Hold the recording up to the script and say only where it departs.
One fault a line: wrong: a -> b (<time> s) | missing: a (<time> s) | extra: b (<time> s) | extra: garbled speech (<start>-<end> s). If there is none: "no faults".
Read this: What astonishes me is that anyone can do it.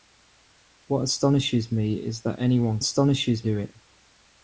wrong: can -> astonishes (2.8 s)